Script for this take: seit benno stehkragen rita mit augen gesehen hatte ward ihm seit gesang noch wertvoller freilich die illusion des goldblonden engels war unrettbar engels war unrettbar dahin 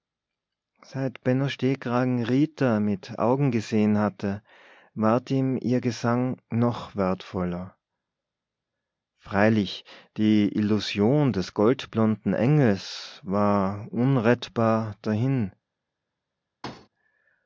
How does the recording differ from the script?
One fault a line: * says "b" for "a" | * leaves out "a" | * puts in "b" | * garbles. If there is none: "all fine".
* says "ihr" for "seit"
* leaves out "engels war unrettbar"